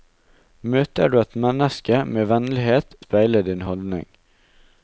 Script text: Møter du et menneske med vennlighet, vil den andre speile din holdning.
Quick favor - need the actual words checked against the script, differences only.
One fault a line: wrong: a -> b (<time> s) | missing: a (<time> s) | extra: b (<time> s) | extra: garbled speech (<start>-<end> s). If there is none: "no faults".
missing: vil den andre (3.0 s)